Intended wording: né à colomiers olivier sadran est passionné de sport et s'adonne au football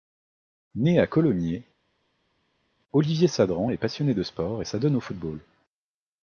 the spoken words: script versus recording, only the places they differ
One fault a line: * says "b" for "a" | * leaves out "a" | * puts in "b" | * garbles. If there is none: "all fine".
all fine